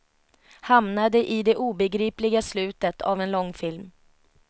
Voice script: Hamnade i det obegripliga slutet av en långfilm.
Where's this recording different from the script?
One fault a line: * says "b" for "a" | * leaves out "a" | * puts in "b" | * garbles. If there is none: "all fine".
all fine